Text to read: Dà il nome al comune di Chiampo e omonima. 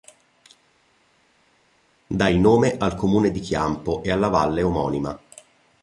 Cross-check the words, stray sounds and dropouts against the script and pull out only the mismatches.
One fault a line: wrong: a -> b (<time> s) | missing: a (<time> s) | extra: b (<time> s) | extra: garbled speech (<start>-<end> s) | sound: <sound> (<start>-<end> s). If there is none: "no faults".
extra: alla valle (4.1 s)